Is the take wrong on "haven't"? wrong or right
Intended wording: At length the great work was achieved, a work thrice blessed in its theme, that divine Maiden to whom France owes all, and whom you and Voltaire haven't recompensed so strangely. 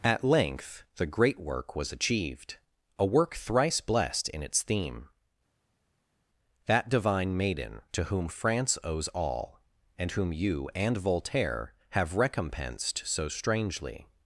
wrong